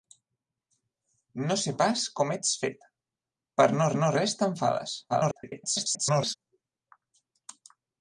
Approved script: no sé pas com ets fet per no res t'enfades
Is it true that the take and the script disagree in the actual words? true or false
true